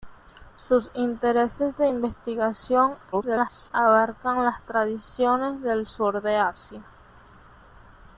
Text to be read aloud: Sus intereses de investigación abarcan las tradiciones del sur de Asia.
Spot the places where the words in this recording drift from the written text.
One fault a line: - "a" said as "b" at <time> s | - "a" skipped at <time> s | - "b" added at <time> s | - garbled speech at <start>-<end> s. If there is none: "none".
- garbled speech at 3.1-3.7 s